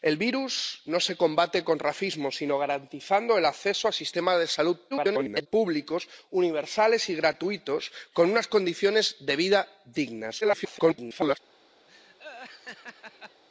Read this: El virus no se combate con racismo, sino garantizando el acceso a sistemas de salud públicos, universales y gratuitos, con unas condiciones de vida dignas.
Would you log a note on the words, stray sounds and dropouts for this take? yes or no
yes